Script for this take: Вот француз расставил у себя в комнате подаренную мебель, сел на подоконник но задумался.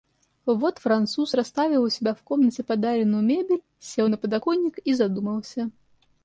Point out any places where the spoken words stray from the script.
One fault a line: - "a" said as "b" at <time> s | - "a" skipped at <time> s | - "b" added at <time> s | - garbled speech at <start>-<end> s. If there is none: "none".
- "но" said as "и" at 4.8 s